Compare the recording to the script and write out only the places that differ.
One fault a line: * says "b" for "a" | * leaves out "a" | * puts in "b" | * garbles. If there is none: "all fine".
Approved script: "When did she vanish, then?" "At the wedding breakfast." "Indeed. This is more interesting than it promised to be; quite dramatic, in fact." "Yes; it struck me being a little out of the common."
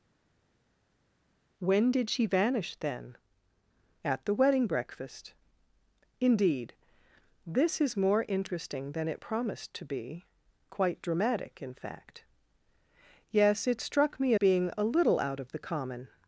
all fine